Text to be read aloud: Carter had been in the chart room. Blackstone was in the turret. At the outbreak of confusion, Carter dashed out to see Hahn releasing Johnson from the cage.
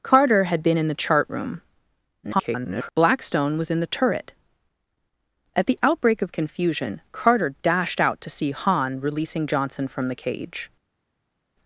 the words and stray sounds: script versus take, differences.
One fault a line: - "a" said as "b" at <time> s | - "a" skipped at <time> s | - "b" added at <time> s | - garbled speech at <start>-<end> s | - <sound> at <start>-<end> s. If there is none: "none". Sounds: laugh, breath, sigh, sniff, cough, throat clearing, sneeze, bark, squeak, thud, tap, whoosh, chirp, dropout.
- garbled speech at 2.2-2.9 s